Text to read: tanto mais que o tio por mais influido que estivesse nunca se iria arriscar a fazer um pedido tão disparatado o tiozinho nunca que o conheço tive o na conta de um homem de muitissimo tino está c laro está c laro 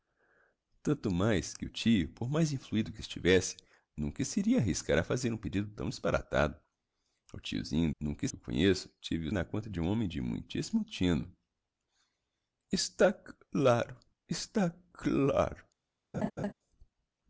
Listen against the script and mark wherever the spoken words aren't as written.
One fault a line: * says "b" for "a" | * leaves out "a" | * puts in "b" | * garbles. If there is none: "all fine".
all fine